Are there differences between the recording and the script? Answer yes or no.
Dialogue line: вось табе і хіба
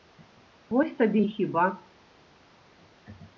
no